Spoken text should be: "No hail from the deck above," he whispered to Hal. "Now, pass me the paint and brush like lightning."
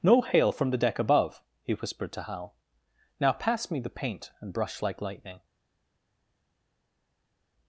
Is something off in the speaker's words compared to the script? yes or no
no